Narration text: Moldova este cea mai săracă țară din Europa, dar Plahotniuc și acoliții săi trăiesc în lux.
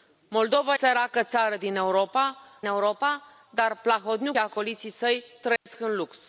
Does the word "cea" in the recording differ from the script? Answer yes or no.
yes